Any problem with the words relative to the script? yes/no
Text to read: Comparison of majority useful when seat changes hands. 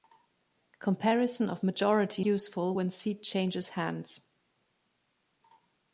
no